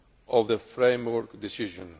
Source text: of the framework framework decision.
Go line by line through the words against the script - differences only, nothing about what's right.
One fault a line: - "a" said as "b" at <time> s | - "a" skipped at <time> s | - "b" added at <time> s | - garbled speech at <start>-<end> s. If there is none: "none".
- "framework" skipped at 1.4 s